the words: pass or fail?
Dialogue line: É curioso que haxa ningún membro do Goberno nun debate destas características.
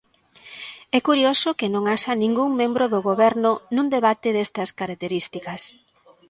fail